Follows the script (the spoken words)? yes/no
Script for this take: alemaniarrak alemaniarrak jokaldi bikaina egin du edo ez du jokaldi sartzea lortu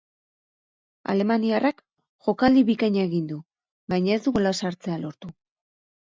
no